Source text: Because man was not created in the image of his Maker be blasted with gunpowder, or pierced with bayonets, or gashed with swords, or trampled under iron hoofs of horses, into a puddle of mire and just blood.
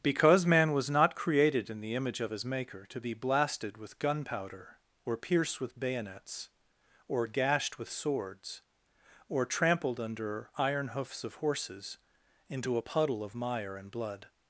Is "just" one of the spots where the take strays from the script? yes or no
yes